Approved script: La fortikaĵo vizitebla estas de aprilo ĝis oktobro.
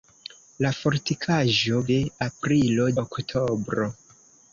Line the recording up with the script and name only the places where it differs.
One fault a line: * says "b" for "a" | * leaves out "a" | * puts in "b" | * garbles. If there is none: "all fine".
* leaves out "vizitebla estas"
* leaves out "ĝis"